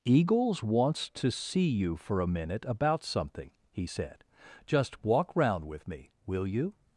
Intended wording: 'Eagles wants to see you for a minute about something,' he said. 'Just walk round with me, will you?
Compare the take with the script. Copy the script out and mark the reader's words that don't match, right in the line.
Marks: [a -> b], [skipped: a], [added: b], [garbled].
'Eagles wants to see you for a minute about something,' he said. 'Just walk round with me, will you?